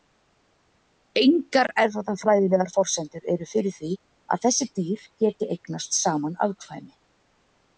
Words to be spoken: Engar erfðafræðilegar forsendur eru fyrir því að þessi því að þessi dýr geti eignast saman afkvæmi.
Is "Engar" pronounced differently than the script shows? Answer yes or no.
no